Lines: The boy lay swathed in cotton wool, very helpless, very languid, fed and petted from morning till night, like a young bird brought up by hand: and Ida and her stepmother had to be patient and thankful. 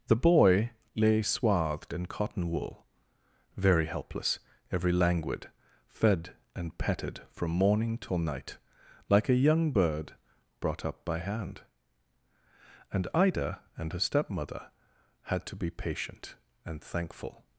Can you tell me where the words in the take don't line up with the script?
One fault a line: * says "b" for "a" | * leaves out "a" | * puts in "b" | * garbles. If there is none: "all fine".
* says "every" for "very"